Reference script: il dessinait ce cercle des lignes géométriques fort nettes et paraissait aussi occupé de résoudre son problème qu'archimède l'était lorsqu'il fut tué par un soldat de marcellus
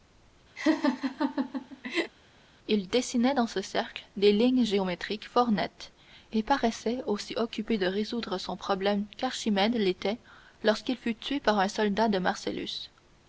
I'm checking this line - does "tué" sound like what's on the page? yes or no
yes